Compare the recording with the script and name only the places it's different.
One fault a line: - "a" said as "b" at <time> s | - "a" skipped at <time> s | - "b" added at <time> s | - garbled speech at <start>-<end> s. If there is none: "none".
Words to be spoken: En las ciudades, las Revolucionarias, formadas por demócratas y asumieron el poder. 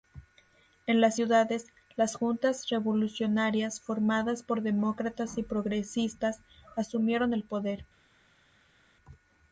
- "Juntas" added at 2.1 s
- "progresistas" added at 5.4 s